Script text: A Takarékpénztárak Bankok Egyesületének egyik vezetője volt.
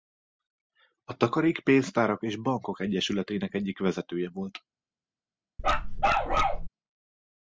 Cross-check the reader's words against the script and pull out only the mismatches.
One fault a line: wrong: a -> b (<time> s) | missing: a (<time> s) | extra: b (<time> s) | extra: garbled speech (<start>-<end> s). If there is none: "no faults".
extra: és (2.2 s)